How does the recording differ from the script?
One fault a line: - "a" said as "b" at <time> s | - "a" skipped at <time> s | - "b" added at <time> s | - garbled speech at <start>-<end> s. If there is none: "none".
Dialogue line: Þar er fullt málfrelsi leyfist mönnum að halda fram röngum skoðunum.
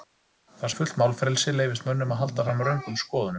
none